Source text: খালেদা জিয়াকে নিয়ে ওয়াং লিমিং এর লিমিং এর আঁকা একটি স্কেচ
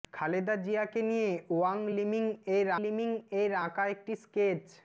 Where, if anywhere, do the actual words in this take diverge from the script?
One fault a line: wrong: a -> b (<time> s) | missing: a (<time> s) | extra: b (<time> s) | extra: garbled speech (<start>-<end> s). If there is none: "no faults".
no faults